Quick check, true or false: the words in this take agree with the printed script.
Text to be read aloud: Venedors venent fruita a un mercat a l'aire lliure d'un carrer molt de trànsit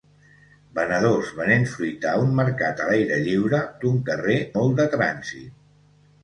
true